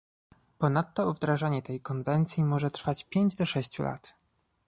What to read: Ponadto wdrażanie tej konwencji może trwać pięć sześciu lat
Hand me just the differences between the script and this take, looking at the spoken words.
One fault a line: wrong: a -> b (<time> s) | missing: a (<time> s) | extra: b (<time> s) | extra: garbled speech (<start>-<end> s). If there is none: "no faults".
extra: do (3.4 s)